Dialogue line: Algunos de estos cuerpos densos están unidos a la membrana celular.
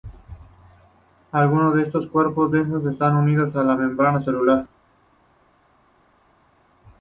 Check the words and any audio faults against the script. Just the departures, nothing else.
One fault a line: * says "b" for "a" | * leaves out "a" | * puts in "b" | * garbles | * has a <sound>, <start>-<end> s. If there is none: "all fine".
all fine